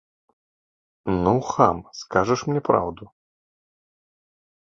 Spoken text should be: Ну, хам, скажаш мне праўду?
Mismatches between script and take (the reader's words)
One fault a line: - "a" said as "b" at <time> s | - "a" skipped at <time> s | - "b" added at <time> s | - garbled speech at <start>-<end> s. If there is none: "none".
none